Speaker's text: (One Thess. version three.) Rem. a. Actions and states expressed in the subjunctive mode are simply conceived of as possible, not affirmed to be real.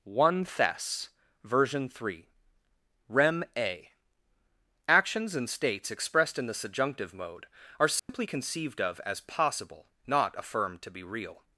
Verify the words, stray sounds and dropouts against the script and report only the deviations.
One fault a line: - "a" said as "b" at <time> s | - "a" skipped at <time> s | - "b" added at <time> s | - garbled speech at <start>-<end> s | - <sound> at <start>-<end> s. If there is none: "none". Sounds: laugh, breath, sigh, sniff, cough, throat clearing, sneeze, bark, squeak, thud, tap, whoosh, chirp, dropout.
- dropout at 8.0-8.1 s